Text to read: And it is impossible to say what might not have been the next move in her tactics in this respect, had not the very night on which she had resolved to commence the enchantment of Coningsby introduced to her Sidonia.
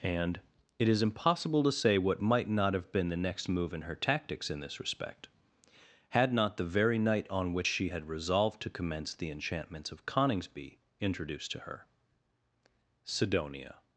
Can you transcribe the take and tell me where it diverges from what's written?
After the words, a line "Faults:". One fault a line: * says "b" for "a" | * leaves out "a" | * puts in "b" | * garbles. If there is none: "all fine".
And it is impossible to say what might not have been the next move in her tactics in this respect, had not the very night on which she had resolved to commence the enchantments of Coningsby introduced to her Sidonia.
Faults:
* says "enchantments" for "enchantment"